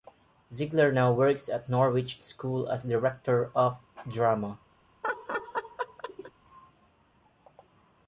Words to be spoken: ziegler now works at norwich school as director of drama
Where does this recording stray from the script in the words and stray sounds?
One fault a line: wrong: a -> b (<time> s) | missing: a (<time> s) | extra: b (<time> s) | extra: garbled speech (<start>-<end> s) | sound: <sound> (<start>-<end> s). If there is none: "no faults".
sound: laugh (5.0-6.3 s)